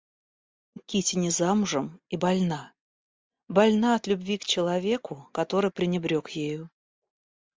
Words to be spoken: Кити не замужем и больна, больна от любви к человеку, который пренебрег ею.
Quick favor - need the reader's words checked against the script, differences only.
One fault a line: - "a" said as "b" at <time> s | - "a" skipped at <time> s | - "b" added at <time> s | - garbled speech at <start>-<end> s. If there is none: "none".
none